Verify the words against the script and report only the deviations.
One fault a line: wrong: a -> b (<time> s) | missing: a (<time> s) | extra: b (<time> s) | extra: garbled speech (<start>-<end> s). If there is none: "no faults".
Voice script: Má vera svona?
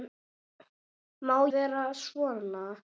no faults